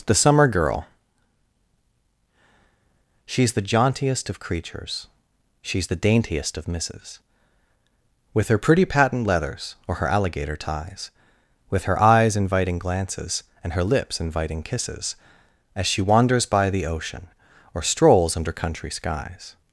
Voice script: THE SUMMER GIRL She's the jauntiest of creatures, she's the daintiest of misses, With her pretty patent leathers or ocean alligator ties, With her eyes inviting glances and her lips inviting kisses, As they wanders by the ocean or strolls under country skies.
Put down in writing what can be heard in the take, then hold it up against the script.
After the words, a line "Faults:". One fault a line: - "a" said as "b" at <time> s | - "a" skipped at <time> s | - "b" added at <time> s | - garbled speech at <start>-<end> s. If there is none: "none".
THE SUMMER GIRL She's the jauntiest of creatures, she's the daintiest of misses, With her pretty patent leathers or her alligator ties, With her eyes inviting glances and her lips inviting kisses, As she wanders by the ocean or strolls under country skies.
Faults:
- "ocean" said as "her" at 9.9 s
- "they" said as "she" at 15.8 s